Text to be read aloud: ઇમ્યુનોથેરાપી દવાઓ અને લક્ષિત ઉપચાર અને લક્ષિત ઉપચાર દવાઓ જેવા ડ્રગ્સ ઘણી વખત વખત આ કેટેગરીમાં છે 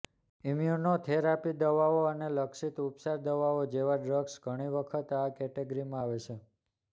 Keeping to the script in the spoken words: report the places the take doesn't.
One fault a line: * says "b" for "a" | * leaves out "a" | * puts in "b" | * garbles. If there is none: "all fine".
* leaves out "અને લક્ષિત ઉપચાર"
* leaves out "વખત"
* puts in "આવે"